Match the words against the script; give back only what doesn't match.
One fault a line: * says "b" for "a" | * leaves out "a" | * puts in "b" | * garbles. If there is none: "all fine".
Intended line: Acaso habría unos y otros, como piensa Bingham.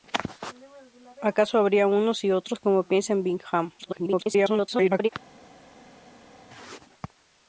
* garbles